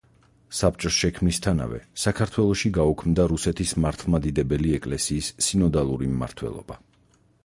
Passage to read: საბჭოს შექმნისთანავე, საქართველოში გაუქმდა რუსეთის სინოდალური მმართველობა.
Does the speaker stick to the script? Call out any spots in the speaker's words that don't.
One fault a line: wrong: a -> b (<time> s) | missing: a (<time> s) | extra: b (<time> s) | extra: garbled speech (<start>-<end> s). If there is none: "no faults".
extra: მართლმადიდებელი ეკლესიის (3.9 s)